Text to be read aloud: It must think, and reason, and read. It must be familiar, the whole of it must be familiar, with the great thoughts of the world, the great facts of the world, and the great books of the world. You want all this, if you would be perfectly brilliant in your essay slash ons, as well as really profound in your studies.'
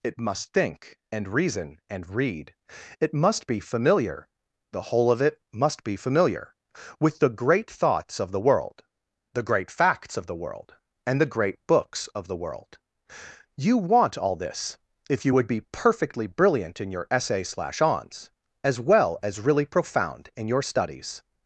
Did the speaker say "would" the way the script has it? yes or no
yes